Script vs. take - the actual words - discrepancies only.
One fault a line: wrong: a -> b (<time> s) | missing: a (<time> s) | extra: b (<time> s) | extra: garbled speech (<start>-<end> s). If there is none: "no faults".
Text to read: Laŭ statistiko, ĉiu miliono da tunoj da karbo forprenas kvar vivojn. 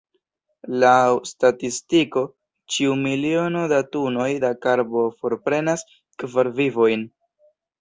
no faults